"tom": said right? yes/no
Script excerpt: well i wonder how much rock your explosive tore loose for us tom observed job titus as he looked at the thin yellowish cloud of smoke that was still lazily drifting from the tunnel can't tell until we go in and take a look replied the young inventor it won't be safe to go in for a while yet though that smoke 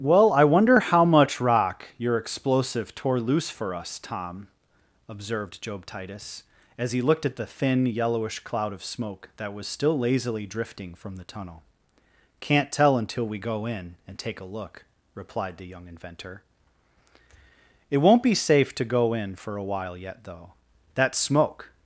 yes